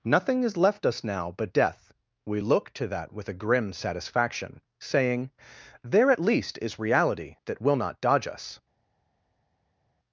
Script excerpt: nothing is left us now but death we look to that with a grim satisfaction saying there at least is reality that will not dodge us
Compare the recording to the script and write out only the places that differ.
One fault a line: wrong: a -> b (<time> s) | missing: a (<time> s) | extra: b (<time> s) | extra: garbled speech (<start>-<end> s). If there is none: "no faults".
no faults